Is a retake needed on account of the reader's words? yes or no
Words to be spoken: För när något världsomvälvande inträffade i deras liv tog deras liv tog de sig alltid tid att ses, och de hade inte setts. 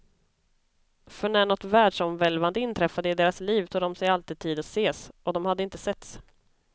yes